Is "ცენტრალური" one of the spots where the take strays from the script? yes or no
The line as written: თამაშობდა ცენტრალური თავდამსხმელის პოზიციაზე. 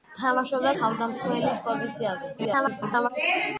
yes